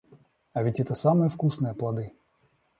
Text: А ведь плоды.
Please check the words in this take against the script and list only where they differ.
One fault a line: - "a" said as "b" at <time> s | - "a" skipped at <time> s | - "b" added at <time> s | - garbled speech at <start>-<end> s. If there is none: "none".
- "это самые вкусные" added at 0.8 s